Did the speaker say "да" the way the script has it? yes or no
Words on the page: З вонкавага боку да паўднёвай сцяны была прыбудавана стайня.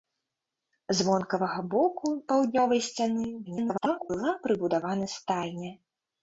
no